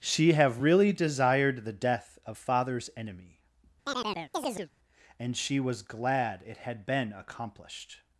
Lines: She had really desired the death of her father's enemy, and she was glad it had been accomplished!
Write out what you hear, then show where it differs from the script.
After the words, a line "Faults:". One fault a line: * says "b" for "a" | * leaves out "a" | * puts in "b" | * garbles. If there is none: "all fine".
She have really desired the death of father's enemy, and she was glad it had been accomplished!
Faults:
* says "have" for "had"
* leaves out "her"